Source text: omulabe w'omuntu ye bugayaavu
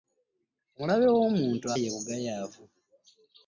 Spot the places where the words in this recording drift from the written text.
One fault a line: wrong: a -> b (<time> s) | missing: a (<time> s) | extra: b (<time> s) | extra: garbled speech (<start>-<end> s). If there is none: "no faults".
no faults